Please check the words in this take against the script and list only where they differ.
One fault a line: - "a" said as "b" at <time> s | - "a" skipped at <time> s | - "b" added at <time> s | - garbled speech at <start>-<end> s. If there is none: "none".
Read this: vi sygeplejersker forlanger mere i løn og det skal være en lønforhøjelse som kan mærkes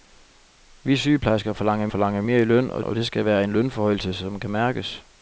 - "forlanger" added at 1.9 s
- "og" added at 2.8 s